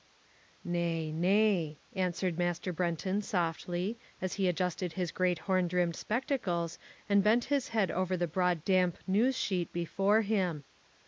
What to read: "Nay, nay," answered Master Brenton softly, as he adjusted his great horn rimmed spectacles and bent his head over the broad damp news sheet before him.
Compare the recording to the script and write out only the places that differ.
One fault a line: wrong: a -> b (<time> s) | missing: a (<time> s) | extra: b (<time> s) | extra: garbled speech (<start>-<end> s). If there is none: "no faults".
no faults